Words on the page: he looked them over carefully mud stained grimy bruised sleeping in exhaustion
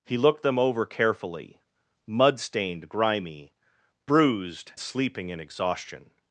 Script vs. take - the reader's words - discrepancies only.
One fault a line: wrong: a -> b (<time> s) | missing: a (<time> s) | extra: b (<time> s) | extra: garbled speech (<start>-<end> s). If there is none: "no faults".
no faults